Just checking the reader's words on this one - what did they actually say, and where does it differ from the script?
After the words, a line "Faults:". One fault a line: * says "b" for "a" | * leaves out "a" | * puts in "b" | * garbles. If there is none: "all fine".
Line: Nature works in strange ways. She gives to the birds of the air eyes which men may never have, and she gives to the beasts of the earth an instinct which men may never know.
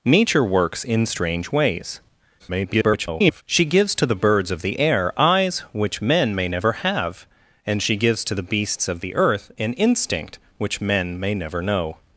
Nature works in strange ways. [garbled] She gives to the birds of the air eyes which men may never have, and she gives to the beasts of the earth an instinct which men may never know.
Faults:
* garbles